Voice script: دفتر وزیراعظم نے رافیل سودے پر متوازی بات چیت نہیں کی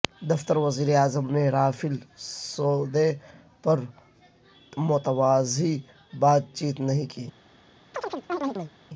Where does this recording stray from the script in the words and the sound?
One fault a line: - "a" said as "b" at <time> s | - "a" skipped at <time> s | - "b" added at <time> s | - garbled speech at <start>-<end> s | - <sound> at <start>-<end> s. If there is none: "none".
- chirp at 7.9-8.7 s